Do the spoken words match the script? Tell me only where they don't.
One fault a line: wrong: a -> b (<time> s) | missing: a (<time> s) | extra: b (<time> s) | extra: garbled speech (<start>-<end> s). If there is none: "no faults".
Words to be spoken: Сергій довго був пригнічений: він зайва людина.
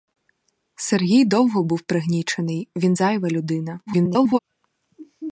extra: garbled speech (3.9-4.4 s)